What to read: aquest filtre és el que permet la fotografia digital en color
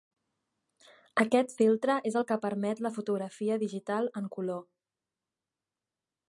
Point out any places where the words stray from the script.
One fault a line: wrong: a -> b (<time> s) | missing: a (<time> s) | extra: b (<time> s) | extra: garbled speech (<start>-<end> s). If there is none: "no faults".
no faults